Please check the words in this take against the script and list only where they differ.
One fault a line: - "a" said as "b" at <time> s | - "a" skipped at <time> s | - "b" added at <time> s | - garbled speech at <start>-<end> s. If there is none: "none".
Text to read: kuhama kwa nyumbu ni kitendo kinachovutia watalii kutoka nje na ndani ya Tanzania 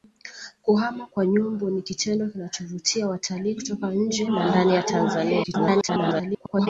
- garbled speech at 5.4-6.7 s